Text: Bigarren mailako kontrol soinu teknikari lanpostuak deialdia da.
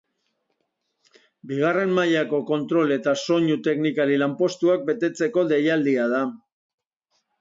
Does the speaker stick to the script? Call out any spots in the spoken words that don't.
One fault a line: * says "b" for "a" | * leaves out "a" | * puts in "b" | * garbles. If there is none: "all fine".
* puts in "eta"
* puts in "betetzeko"